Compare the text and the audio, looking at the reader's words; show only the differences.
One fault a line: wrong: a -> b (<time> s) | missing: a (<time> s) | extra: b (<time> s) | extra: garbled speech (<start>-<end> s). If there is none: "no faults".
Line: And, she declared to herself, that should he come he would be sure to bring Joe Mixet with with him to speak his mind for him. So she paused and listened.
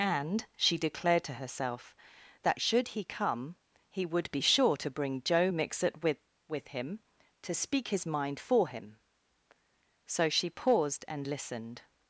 no faults